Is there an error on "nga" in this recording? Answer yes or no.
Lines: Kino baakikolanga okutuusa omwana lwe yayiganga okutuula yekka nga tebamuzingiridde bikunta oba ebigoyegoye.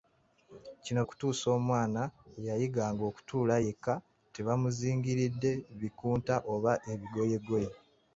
yes